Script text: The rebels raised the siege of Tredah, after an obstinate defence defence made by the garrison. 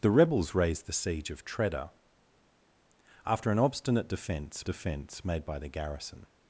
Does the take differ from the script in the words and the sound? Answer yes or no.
no